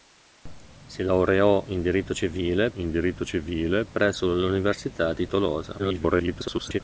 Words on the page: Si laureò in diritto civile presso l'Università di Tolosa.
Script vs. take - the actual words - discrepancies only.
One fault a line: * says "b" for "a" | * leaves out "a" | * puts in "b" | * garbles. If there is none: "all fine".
* puts in "in diritto civile"
* garbles